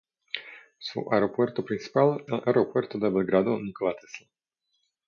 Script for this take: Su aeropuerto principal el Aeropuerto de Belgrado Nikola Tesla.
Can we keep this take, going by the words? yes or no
yes